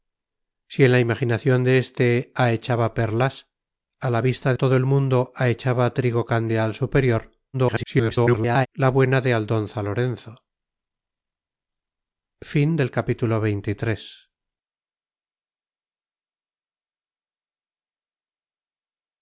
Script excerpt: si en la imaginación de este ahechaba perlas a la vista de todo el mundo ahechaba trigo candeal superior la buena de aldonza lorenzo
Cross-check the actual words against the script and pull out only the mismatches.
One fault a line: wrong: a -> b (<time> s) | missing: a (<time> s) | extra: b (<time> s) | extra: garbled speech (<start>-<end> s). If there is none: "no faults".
missing: de (4.5 s)
extra: garbled speech (7.5-8.7 s)